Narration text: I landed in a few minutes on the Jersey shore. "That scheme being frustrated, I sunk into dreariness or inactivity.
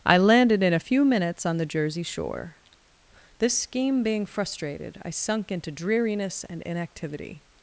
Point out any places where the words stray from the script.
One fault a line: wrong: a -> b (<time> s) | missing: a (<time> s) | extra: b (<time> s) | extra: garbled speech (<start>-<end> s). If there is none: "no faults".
wrong: That -> This (3.4 s)
wrong: or -> and (6.4 s)